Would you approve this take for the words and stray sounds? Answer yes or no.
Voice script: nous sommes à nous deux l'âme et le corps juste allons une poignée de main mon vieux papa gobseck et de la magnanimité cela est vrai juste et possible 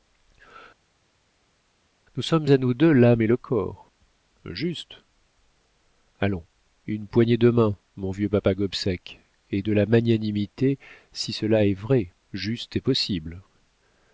no